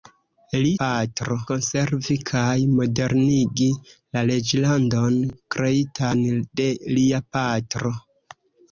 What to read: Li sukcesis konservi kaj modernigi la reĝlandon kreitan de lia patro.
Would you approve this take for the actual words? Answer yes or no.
no